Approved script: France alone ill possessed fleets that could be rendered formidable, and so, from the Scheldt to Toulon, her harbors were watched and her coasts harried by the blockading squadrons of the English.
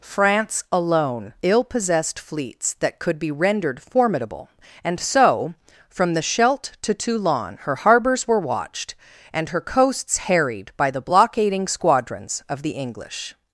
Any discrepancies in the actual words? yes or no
no